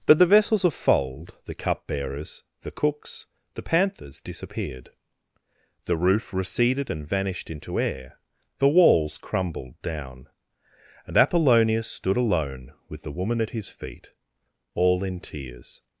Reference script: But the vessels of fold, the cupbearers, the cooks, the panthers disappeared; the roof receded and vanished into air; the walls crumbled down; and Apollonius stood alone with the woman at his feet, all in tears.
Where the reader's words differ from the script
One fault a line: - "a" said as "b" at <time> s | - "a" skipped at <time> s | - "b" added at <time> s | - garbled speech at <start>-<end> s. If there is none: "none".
none